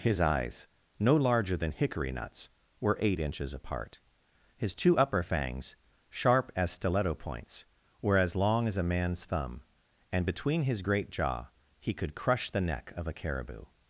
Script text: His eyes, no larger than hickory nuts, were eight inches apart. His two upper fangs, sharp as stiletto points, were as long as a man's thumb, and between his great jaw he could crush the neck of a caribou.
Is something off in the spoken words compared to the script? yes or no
no